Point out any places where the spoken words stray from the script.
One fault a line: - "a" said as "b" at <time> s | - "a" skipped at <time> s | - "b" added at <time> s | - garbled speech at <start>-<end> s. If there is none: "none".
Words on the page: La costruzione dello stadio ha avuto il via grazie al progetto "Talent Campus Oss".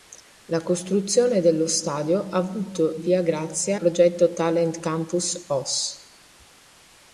- "il" skipped at 3.0 s
- "al" skipped at 3.7 s